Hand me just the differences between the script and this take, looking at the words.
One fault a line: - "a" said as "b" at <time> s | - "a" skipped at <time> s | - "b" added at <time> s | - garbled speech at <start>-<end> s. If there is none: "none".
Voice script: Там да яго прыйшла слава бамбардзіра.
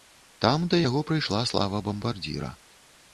none